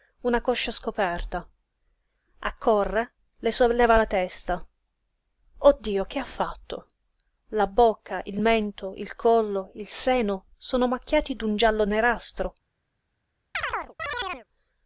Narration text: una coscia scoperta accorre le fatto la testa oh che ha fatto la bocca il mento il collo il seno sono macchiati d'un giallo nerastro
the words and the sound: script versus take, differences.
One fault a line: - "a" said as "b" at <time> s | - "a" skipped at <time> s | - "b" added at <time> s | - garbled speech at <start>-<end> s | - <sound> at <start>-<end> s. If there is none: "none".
- "fatto" said as "solleva" at 3.5 s
- "dio" added at 5.8 s
- chirp at 13.5-14.5 s